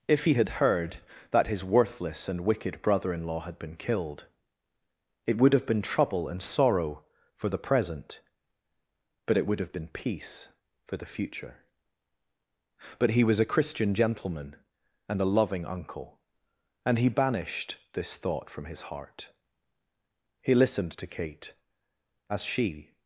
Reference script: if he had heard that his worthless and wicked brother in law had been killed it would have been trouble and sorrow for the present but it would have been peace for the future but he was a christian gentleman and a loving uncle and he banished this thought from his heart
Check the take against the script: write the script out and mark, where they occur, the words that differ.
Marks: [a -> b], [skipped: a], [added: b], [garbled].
if he had heard that his worthless and wicked brother in law had been killed it would have been trouble and sorrow for the present but it would have been peace for the future but he was a christian gentleman and a loving uncle and he banished this thought from his heart [added: he listened to kate as she]